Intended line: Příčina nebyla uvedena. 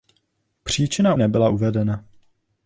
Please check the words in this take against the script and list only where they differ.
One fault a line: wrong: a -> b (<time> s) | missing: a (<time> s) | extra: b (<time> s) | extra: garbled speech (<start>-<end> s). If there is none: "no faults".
no faults